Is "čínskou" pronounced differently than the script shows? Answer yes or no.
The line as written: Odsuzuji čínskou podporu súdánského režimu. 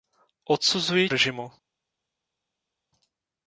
yes